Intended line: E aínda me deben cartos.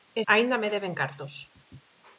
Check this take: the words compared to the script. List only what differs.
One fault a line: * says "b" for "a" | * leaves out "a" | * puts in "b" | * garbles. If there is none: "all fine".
all fine